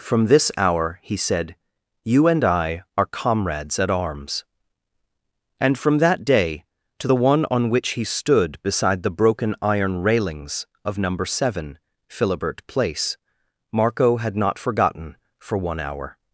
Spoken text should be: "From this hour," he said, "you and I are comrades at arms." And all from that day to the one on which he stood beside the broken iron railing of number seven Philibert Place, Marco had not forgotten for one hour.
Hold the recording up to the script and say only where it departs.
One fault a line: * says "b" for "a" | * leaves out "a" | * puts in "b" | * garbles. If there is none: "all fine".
* leaves out "all"
* says "railings" for "railing"